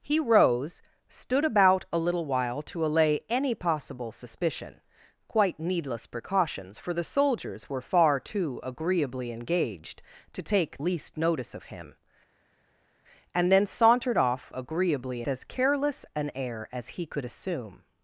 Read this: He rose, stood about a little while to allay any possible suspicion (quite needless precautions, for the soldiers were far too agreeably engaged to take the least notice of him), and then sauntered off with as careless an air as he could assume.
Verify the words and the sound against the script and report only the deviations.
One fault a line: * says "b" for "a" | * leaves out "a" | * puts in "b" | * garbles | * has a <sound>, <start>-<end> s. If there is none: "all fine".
* leaves out "the"
* says "agreeably" for "with"